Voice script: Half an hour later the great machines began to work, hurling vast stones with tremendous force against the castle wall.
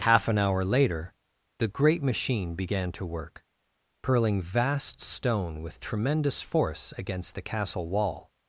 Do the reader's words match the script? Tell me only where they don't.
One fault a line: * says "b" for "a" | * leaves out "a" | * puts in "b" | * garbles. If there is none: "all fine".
* says "machine" for "machines"
* says "stone" for "stones"